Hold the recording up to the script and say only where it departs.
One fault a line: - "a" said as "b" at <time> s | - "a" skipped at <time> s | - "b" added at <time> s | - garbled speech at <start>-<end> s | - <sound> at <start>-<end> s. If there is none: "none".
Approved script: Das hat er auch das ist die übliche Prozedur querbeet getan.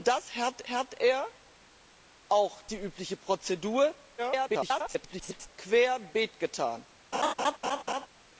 - "hat" added at 0.7 s
- "das ist" skipped at 2.6 s
- garbled speech at 4.2-5.5 s
- laugh at 7.1-8.1 s